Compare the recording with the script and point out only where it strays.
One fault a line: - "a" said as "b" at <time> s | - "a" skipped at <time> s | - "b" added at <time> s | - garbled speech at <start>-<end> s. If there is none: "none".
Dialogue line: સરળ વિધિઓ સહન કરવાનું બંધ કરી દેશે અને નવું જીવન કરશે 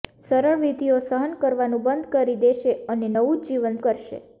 none